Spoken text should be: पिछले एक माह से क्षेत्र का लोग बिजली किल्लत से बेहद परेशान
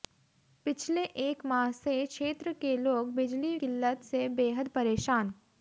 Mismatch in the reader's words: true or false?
true